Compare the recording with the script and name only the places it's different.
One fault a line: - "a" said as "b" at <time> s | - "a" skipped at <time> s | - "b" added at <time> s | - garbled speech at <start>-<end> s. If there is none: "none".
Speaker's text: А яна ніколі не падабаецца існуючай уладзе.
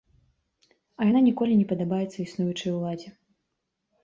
none